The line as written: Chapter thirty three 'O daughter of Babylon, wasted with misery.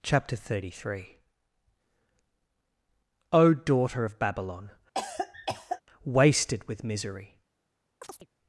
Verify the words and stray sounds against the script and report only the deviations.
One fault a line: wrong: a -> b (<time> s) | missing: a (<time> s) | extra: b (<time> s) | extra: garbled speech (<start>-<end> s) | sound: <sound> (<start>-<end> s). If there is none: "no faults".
sound: cough (4.9-5.8 s)
sound: chirp (8.0-8.3 s)